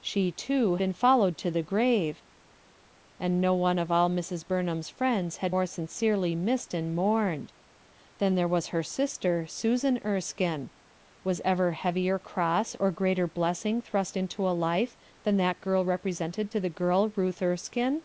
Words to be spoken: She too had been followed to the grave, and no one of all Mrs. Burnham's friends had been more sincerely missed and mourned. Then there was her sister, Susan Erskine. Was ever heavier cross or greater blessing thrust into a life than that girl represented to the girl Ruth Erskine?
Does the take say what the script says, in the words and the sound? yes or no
no